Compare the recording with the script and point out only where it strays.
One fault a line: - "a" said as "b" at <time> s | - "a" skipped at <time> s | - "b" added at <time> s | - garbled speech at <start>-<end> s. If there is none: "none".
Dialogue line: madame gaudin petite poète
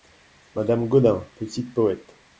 none